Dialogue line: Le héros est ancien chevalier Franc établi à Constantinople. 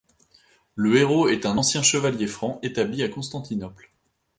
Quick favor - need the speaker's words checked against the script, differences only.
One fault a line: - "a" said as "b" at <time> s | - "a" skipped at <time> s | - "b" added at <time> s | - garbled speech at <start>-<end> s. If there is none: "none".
- "un" added at 1.4 s